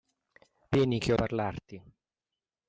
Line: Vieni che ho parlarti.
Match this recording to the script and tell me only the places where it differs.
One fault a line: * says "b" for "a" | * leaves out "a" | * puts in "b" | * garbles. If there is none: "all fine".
all fine